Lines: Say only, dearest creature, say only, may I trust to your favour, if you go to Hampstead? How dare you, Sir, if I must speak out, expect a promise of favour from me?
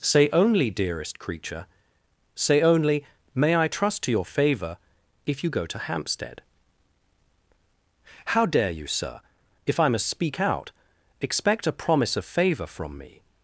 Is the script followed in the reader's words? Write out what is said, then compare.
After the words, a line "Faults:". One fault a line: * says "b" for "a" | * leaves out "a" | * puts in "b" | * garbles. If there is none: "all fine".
Say only, dearest creature, say only, may I trust to your favour, if you go to Hampstead? How dare you, Sir, if I must speak out, expect a promise of favour from me?
Faults:
all fine